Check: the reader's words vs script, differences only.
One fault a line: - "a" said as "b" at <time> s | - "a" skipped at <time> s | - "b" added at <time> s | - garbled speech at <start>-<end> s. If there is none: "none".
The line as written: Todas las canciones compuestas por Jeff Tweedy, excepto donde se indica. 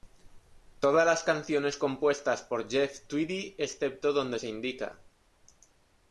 none